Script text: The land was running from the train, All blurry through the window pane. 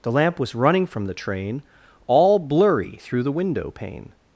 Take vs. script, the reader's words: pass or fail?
fail